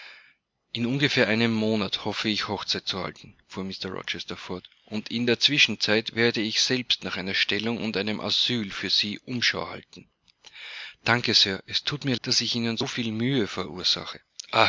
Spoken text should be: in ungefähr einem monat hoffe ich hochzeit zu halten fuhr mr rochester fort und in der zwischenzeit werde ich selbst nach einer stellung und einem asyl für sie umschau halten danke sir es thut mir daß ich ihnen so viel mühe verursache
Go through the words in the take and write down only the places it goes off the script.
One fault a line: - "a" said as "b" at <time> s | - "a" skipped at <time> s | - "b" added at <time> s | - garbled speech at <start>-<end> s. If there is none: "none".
none